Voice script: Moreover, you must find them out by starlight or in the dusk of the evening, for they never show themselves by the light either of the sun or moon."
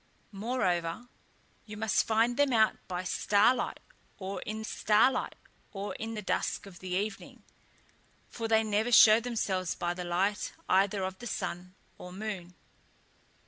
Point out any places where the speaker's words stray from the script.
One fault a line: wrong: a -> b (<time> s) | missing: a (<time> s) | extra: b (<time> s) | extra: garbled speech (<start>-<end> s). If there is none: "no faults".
extra: starlight or in (4.6 s)